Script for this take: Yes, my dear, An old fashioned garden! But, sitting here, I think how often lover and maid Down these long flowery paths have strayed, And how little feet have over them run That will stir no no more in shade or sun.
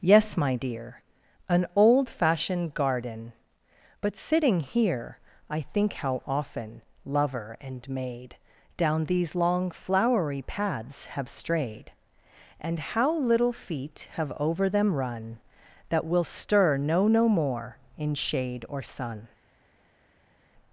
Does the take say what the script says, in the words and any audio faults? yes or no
yes